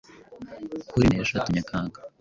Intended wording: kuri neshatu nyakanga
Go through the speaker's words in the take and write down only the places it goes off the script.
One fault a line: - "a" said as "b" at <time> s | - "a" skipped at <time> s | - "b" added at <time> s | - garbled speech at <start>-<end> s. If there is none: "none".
none